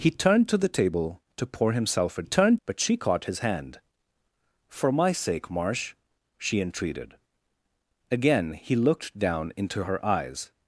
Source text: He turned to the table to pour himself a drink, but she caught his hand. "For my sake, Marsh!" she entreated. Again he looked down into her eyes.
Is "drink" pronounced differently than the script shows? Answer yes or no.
yes